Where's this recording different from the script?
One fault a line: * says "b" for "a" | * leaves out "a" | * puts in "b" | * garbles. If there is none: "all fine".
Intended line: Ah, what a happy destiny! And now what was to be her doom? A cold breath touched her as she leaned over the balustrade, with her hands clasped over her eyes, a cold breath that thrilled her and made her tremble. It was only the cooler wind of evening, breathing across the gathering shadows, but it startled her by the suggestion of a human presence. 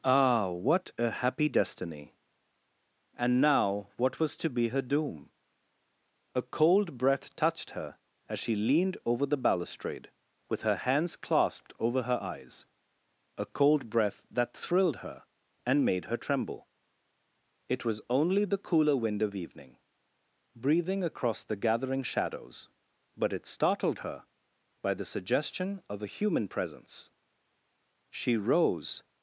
* puts in "She rose"